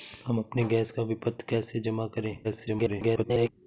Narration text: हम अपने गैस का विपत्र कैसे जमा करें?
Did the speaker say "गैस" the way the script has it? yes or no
yes